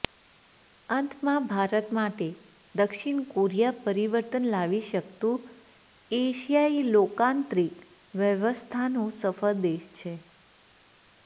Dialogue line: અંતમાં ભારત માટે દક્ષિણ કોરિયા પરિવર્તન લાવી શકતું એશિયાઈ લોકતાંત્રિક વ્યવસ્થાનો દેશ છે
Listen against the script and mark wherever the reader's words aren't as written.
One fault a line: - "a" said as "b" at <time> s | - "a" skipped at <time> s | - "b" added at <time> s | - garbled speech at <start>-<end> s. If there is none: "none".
- "સફળ" added at 9.1 s